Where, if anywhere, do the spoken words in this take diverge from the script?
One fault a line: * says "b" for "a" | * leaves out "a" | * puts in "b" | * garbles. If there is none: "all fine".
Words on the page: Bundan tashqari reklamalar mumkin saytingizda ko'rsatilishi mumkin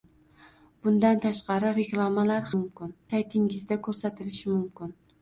all fine